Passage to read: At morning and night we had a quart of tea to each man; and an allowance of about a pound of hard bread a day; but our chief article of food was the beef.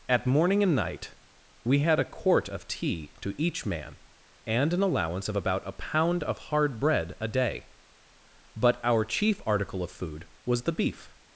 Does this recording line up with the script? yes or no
yes